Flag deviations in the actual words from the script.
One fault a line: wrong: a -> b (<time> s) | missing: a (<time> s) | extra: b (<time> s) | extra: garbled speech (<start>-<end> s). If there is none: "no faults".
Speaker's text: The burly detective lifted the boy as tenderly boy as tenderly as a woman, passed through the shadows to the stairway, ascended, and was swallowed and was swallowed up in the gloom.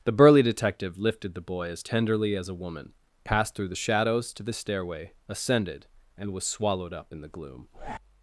missing: boy (2.4 s)
missing: tenderly as (2.5 s)
missing: and was swallowed (6.9 s)